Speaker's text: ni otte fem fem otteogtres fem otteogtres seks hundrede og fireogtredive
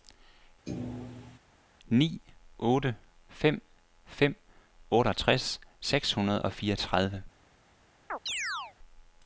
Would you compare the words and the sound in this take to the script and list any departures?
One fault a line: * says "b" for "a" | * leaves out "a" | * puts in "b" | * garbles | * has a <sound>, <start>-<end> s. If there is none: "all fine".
* has a thud, 0.7-1.4 s
* leaves out "fem otteogtres"
* has a chirp, 8.1-8.7 s